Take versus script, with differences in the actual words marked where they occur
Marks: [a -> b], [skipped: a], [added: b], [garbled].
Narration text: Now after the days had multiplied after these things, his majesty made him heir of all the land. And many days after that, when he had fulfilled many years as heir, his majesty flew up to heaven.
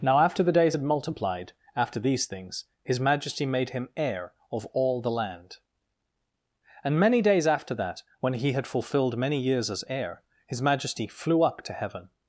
Now after the days had multiplied after these things, his majesty made him heir of all the land. And many days after that, when he had fulfilled many years as heir, his majesty flew up to heaven.